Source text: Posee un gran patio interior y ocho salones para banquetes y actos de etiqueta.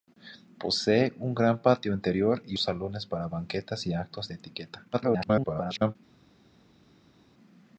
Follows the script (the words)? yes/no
no